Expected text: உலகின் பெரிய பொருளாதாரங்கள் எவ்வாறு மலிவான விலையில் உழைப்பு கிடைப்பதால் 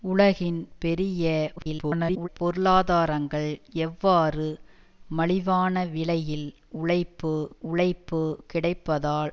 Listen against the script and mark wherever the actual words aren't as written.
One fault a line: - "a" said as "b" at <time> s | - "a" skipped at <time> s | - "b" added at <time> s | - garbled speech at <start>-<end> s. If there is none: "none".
- garbled speech at 1.6-2.3 s
- "உழைப்பு" added at 7.6 s